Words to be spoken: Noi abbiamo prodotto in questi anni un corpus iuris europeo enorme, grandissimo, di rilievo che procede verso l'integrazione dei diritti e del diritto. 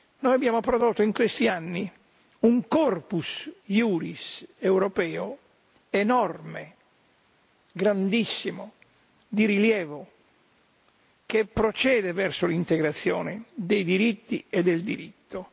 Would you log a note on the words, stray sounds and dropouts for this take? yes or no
no